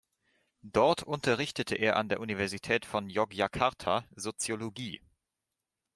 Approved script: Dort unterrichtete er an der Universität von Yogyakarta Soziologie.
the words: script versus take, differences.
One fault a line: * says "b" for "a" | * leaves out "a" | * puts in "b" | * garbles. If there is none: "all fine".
all fine